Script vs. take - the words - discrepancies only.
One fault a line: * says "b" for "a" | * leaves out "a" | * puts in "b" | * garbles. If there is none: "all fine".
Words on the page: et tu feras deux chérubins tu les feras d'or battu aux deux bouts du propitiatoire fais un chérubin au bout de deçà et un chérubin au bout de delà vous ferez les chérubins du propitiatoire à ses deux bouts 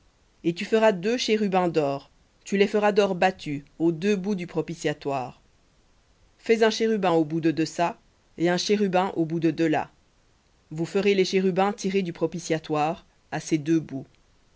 * puts in "d'or"